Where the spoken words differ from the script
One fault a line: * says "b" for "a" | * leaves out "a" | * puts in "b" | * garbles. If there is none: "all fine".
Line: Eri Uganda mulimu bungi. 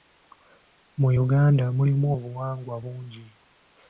* says "Mu" for "Eri"
* puts in "obuwangwa"